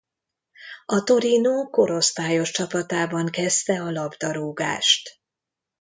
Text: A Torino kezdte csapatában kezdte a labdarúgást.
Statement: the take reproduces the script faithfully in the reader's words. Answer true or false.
false